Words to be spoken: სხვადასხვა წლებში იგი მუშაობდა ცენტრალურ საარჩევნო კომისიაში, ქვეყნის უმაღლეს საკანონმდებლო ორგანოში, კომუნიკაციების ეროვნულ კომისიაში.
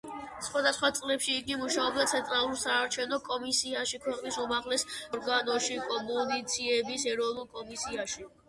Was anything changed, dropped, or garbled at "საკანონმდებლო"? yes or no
yes